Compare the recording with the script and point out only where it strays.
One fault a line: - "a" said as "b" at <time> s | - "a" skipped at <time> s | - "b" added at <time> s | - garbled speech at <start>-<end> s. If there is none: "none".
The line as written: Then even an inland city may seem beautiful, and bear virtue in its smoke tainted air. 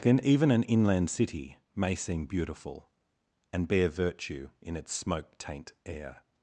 - "tainted" said as "taint" at 5.4 s